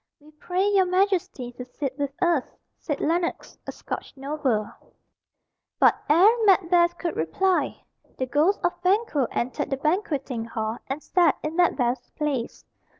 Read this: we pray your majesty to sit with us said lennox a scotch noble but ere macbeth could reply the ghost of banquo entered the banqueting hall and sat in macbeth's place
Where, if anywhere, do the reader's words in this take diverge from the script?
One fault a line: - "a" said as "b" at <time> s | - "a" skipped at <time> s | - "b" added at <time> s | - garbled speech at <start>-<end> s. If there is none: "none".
none